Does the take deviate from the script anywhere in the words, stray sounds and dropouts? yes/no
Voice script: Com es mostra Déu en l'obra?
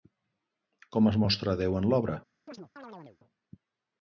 yes